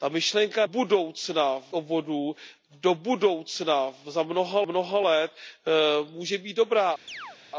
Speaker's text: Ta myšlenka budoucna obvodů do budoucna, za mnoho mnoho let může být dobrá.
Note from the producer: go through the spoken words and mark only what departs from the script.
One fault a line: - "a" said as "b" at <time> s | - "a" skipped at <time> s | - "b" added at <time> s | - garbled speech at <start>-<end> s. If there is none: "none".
none